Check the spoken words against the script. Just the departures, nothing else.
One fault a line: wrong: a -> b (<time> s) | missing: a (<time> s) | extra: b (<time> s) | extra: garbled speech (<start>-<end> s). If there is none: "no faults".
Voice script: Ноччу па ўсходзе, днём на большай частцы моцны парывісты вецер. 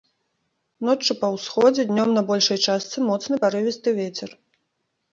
no faults